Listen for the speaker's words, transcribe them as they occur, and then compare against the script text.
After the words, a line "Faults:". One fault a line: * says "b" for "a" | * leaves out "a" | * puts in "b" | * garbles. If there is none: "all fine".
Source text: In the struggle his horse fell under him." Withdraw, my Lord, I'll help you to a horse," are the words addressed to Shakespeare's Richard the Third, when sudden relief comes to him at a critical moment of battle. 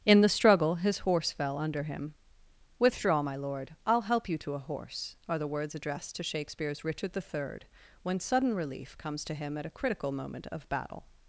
In the struggle his horse fell under him." Withdraw, my Lord, I'll help you to a horse," are the words addressed to Shakespeare's Richard the Third, when sudden relief comes to him at a critical moment of battle.
Faults:
all fine